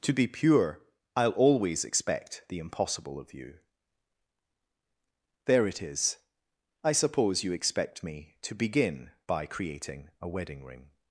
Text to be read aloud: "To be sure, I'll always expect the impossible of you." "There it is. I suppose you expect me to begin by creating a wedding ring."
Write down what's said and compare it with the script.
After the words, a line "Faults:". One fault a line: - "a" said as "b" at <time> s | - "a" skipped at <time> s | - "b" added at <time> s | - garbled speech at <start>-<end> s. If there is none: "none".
"To be pure, I'll always expect the impossible of you." "There it is. I suppose you expect me to begin by creating a wedding ring."
Faults:
- "sure" said as "pure" at 0.3 s